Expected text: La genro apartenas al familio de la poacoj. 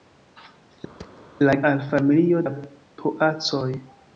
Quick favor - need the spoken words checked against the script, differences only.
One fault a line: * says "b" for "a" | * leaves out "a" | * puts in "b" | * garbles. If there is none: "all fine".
* leaves out "genro apartenas"
* leaves out "de"